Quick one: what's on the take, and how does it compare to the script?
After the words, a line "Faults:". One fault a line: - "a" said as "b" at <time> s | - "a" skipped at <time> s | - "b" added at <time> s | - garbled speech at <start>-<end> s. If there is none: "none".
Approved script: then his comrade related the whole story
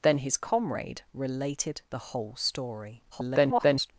then his comrade related the whole story [garbled]
Faults:
- garbled speech at 3.1-3.9 s